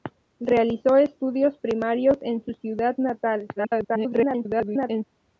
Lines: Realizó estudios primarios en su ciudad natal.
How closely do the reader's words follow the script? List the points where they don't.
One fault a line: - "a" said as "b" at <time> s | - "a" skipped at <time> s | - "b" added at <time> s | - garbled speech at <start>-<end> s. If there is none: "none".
- garbled speech at 3.6-5.0 s